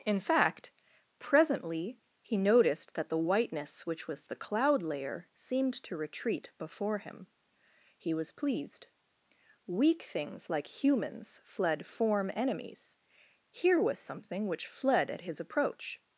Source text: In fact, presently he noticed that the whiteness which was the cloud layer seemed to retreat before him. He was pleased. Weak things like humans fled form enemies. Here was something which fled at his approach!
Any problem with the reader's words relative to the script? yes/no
no